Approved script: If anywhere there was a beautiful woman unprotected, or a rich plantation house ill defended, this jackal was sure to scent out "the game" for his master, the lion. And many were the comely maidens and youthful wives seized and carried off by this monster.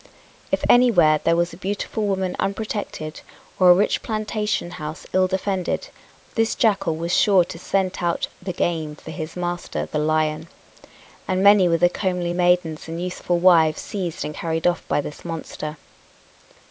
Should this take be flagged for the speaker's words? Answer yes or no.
no